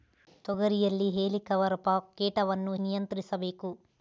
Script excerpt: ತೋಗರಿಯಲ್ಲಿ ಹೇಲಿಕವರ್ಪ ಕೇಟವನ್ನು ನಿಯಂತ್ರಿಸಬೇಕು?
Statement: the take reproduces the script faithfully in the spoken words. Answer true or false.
true